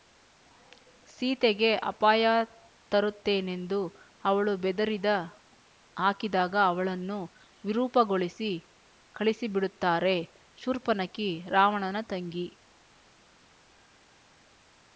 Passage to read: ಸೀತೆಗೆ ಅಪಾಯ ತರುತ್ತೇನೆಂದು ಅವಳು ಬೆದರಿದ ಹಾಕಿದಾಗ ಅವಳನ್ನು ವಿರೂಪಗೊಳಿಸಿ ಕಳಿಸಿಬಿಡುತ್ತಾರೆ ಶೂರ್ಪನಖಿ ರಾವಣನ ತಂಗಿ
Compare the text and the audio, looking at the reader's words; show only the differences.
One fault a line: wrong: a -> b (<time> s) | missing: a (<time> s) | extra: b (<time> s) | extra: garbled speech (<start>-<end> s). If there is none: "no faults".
no faults